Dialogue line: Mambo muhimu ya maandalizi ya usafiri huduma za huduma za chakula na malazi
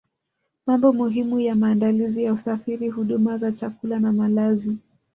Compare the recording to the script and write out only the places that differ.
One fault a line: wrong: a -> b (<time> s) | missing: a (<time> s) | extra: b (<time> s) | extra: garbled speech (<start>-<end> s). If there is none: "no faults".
missing: huduma za (3.5 s)